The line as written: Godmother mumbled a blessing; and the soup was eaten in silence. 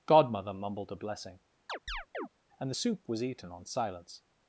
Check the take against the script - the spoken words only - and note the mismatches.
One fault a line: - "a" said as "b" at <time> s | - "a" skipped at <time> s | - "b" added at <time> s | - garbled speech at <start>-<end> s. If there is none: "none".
- "in" said as "on" at 3.5 s